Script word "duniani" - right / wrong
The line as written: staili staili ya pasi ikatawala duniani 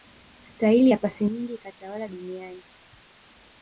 right